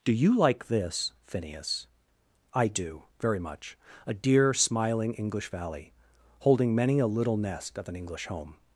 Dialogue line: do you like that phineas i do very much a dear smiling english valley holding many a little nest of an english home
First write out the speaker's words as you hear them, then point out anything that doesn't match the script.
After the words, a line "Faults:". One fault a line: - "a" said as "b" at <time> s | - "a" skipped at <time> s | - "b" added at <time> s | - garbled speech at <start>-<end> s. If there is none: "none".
do you like this phineas i do very much a dear smiling english valley holding many a little nest of an english home
Faults:
- "that" said as "this" at 0.7 s